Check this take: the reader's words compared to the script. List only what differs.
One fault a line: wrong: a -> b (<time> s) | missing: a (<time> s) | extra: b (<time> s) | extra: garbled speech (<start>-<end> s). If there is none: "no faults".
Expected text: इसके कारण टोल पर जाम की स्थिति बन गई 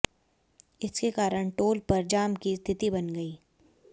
no faults